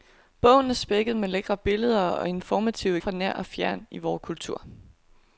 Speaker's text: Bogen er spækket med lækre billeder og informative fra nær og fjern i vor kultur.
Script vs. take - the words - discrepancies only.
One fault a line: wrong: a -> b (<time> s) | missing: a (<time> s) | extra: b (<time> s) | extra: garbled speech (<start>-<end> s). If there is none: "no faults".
no faults